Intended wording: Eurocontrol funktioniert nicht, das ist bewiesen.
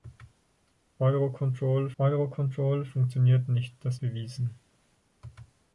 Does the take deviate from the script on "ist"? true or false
true